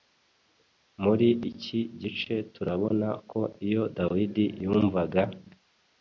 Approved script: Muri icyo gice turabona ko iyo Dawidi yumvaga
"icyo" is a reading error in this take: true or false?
true